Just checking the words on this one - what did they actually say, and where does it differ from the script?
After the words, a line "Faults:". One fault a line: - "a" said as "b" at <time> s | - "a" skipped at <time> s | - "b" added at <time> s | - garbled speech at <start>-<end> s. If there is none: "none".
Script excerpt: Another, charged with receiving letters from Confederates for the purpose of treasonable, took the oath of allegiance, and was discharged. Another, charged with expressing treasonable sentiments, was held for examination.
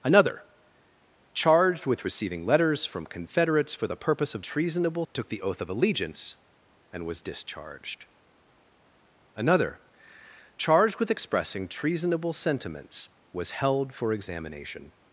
Another, charged with receiving letters from Confederates for the purpose of treasonable, took the oath of allegiance, and was discharged. Another, charged with expressing treasonable sentiments, was held for examination.
Faults:
none